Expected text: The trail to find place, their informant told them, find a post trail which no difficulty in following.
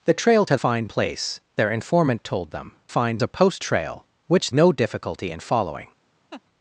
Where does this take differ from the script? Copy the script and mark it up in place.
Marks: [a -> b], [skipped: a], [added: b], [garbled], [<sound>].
The trail to find place, their informant told them, find a post trail which no difficulty in following. [laugh]